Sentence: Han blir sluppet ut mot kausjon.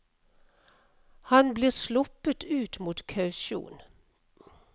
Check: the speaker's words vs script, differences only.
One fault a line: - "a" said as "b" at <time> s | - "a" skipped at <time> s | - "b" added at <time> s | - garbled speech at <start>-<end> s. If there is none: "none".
none